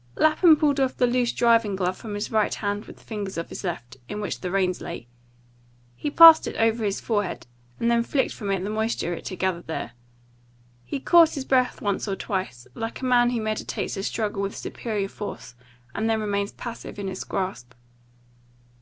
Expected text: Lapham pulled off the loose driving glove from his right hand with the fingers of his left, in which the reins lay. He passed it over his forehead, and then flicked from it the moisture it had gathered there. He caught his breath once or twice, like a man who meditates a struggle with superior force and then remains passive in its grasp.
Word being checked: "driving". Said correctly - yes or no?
yes